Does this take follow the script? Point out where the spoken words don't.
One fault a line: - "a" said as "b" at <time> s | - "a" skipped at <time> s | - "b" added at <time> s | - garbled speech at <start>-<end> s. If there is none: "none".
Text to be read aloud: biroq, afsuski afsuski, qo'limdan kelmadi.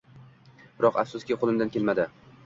- "afsuski" skipped at 1.4 s